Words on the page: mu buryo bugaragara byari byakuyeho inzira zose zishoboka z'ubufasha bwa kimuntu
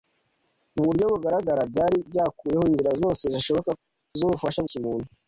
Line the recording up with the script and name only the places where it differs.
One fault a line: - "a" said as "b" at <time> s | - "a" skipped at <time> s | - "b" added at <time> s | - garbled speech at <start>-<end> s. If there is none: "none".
- "bwa" skipped at 4.6 s